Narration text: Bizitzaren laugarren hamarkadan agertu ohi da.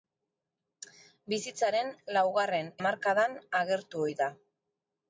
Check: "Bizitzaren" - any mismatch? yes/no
no